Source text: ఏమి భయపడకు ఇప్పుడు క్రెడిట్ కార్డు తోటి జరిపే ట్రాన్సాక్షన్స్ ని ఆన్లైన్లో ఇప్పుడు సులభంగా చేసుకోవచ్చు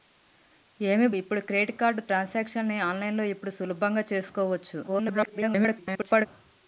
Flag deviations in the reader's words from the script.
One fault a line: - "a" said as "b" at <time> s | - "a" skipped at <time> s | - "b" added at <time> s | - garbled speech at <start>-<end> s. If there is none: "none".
- "భయపడకు" skipped at 1.1 s
- "తోటి జరిపే" skipped at 2.0 s
- garbled speech at 4.9-6.3 s